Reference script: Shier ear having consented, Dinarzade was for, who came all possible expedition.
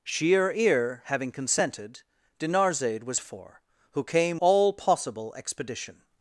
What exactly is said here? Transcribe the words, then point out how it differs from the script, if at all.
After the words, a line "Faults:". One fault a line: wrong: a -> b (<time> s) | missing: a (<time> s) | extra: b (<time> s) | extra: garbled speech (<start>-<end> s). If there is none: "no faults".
Shier ear having consented, Dinarzade was for, who came all possible expedition.
Faults:
no faults